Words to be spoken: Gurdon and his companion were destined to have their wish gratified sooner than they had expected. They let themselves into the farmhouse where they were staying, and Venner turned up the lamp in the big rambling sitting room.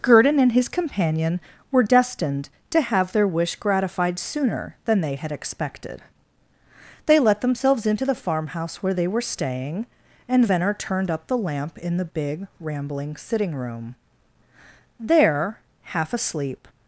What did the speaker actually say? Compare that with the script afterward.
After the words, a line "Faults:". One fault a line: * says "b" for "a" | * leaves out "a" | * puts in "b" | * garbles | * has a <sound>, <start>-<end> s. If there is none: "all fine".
Gurdon and his companion were destined to have their wish gratified sooner than they had expected. They let themselves into the farmhouse where they were staying, and Venner turned up the lamp in the big rambling sitting room. There, half asleep
Faults:
* puts in "There half asleep"